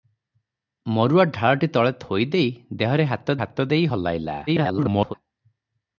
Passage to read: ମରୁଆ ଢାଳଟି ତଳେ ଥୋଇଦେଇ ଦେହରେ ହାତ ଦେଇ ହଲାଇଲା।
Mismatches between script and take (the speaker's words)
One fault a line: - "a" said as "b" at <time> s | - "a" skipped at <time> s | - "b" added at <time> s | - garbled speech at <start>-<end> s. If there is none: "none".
- "ହାତ" added at 3.4 s
- garbled speech at 4.5-5.1 s